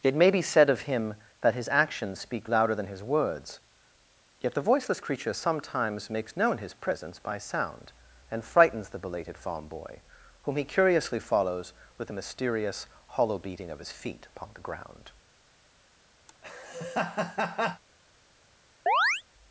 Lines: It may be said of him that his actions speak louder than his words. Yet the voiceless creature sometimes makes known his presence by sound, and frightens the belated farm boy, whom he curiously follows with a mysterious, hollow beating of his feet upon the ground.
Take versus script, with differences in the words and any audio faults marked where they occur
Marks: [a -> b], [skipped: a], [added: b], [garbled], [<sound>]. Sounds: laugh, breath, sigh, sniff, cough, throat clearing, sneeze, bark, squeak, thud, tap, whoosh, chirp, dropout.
It may be said of him that his actions speak louder than his words. Yet the voiceless creature sometimes makes known his presence by sound, and frightens the belated farm boy, whom he curiously follows with a mysterious, hollow beating of his feet upon the ground. [laugh] [chirp]